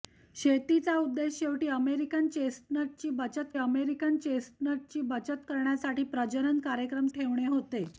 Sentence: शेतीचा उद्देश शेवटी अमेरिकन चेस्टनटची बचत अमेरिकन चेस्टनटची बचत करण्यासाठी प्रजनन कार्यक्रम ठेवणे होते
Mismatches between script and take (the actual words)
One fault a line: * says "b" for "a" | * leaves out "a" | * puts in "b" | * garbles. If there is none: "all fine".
all fine